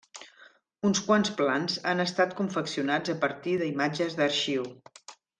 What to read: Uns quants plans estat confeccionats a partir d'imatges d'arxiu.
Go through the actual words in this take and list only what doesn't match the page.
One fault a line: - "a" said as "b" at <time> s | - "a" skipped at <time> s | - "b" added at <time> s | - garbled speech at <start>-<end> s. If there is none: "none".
- "han" added at 1.9 s